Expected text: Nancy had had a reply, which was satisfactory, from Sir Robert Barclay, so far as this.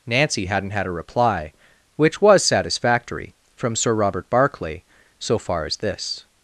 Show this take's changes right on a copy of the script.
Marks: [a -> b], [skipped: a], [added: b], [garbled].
Nancy [had -> hadn't] had a reply, which was satisfactory, from Sir Robert Barclay, so far as this.